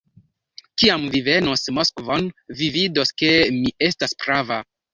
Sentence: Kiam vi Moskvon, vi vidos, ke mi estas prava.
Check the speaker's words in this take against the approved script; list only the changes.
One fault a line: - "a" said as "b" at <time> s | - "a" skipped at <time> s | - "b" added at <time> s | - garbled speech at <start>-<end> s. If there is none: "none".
- "venos" added at 1.3 s